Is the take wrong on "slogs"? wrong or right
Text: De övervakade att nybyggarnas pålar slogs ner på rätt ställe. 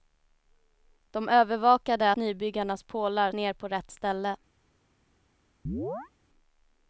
wrong